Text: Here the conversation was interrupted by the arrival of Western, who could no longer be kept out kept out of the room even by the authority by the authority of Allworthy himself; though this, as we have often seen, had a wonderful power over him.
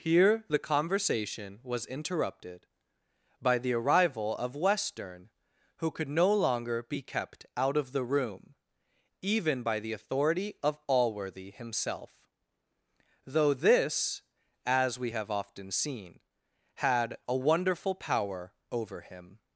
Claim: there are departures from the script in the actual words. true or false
true